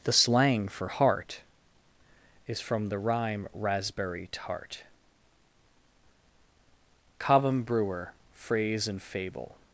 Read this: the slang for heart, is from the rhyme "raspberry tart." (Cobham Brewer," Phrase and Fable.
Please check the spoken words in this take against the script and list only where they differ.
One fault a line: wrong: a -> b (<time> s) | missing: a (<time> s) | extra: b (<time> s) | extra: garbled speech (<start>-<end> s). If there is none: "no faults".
no faults